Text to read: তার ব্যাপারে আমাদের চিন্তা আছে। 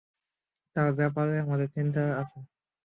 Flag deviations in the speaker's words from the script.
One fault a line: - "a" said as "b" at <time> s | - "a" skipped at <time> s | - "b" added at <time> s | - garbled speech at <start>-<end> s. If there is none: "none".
none